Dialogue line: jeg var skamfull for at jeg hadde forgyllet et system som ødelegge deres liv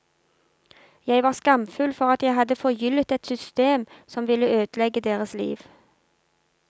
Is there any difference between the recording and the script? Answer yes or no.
yes